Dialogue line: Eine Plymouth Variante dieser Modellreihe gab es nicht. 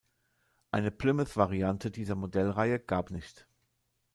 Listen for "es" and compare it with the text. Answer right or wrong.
wrong